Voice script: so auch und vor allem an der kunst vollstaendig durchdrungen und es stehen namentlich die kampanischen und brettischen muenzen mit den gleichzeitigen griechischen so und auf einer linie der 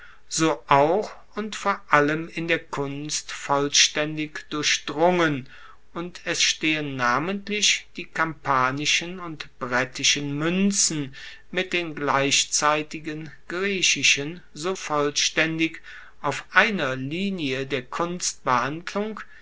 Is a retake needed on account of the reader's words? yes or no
yes